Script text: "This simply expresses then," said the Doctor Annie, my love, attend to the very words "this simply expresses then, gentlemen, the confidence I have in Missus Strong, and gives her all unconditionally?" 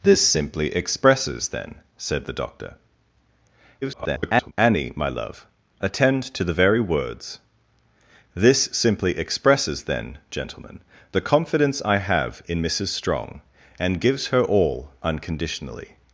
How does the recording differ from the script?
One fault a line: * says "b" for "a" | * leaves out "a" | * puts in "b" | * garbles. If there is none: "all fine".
* garbles